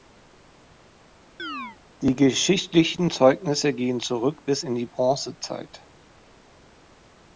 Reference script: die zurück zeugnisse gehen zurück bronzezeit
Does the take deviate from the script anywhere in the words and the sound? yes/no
yes